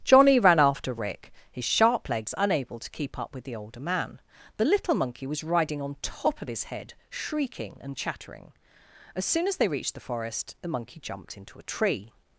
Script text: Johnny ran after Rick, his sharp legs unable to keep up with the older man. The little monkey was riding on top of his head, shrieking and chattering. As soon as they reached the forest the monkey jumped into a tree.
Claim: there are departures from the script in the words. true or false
false